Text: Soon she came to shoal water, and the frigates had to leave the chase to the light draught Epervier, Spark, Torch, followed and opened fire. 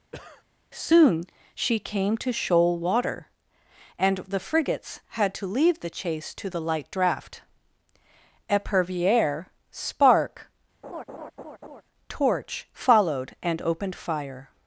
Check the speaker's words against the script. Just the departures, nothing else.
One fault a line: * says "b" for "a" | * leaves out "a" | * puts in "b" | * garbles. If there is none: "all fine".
all fine